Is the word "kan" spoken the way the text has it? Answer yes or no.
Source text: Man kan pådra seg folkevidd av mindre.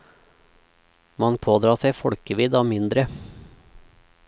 no